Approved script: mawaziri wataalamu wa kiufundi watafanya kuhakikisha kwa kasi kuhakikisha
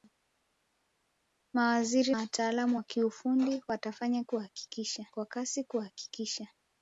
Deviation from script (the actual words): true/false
false